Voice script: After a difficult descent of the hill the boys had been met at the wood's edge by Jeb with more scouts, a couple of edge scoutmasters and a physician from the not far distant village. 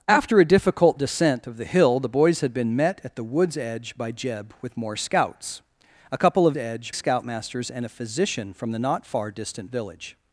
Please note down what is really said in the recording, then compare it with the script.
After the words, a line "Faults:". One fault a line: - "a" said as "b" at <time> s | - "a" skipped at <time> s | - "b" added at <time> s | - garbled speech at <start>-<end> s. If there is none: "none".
After a difficult descent of the hill the boys had been met at the wood's edge by Jeb with more scouts, a couple of edge scoutmasters and a physician from the not far distant village.
Faults:
none